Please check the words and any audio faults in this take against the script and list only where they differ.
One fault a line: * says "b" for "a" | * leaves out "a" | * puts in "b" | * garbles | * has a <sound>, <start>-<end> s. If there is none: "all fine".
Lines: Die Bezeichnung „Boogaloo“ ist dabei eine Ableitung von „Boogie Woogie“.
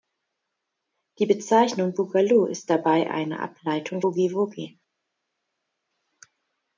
* leaves out "von"